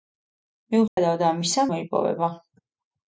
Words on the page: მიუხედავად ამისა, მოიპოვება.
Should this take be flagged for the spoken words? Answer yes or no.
no